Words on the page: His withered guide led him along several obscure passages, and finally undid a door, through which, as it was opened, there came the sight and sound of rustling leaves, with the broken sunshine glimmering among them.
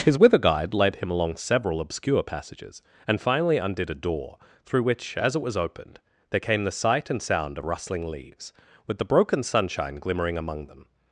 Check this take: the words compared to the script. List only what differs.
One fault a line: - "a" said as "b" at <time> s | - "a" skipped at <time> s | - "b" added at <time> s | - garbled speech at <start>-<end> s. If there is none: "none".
- "withered" said as "wither" at 0.2 s